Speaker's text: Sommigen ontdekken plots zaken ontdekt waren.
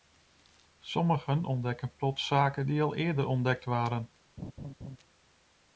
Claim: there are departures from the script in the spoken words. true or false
true